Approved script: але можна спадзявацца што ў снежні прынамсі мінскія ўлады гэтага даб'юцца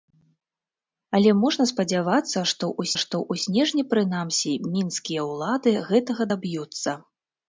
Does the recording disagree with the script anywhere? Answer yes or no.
yes